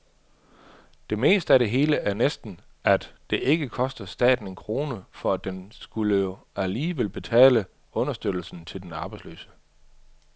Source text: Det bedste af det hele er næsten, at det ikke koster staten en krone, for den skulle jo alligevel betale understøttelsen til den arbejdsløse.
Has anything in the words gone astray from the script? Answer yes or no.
no